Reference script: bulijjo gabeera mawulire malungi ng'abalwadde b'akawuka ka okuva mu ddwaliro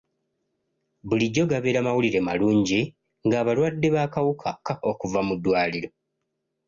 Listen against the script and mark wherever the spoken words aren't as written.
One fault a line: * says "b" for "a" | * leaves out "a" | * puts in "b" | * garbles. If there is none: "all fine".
all fine